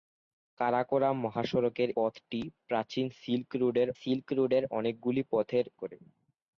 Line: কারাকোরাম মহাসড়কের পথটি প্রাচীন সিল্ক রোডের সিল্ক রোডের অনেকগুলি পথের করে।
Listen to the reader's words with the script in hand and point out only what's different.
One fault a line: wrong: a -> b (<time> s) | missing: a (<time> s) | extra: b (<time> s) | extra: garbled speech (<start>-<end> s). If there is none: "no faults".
no faults